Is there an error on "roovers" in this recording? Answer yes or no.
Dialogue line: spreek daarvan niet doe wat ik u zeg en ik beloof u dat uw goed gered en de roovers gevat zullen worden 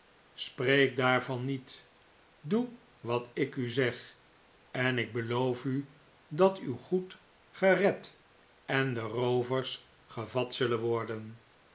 no